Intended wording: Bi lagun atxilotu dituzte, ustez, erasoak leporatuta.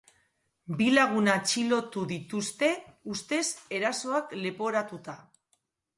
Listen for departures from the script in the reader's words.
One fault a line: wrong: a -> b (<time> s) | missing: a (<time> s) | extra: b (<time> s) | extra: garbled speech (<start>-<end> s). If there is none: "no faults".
no faults